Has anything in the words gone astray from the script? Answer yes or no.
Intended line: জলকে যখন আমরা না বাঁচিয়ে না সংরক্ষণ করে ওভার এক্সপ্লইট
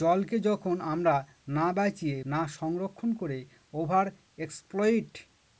no